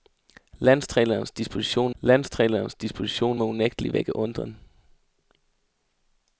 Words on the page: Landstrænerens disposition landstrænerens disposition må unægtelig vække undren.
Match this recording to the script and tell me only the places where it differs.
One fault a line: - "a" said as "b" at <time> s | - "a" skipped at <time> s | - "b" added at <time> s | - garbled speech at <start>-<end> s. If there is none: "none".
none